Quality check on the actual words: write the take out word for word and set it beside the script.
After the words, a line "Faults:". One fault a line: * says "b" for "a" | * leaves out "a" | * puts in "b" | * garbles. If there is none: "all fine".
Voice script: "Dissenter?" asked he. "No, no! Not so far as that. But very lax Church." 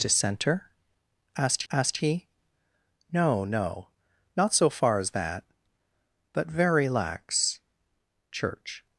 "Dissenter?" asked asked he. "No, no! Not so far as that. But very lax Church."
Faults:
* puts in "asked"